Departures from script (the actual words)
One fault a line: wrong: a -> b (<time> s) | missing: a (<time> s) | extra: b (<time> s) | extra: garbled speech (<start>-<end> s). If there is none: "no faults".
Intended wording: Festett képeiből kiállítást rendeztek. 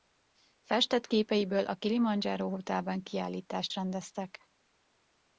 extra: a Kilimandzsáró Hotelben (1.6 s)